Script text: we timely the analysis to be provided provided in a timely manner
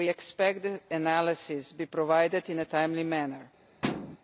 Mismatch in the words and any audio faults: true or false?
true